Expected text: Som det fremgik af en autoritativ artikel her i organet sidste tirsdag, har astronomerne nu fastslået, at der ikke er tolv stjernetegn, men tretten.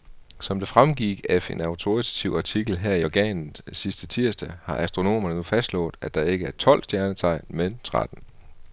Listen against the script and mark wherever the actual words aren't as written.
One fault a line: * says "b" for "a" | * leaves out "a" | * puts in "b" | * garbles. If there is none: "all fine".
all fine